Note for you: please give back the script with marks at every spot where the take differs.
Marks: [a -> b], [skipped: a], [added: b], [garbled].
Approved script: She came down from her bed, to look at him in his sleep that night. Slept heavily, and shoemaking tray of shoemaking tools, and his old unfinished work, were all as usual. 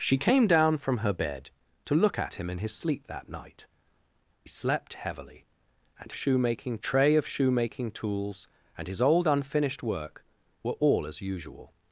She came down from her bed, to look at him in his sleep that night. Slept heavily, and shoemaking tray of shoemaking tools, and his old unfinished work, were all as usual.